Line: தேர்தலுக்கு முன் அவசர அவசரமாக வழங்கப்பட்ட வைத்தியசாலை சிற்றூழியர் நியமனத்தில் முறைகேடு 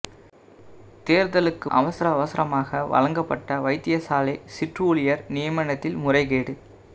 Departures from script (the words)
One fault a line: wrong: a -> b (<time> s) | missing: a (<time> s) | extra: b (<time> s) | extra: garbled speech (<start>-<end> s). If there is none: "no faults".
missing: முன் (1.7 s)